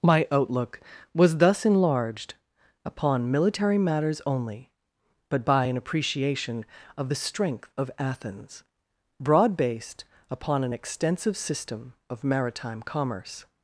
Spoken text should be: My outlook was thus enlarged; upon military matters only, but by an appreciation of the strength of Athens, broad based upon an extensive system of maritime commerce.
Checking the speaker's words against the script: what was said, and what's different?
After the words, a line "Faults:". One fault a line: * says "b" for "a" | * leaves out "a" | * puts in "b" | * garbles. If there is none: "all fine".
My outlook was thus enlarged; upon military matters only, but by an appreciation of the strength of Athens, broad based upon an extensive system of maritime commerce.
Faults:
all fine